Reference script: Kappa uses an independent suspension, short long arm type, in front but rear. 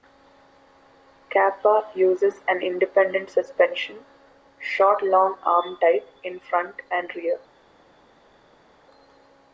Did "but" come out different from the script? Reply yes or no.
yes